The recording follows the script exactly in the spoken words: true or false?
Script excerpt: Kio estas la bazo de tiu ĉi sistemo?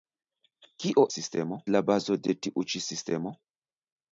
false